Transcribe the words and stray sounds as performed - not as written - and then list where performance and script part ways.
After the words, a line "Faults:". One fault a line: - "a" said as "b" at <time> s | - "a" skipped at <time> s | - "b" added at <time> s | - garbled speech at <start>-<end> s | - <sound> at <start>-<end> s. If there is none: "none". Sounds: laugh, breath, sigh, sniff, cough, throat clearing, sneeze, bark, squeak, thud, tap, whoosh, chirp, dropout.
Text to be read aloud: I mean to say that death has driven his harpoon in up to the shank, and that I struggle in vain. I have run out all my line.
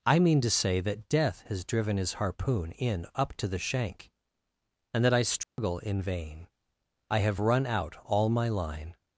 I mean to say that death has driven his harpoon in up to the shank, and that I struggle in vain. I have run out all my line.
Faults:
- dropout at 5.4-5.6 s